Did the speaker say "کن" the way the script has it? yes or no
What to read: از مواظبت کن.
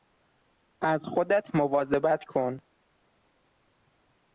yes